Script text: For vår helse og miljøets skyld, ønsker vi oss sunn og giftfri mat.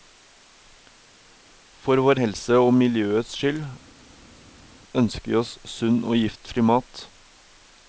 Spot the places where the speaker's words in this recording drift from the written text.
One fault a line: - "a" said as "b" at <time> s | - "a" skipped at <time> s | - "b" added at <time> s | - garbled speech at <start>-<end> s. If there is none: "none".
none